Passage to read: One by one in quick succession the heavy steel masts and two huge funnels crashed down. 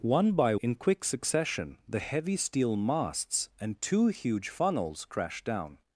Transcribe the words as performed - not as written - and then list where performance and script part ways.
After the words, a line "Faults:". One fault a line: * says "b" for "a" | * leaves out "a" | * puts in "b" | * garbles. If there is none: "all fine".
One by in quick succession the heavy steel masts and two huge funnels crashed down.
Faults:
* leaves out "one"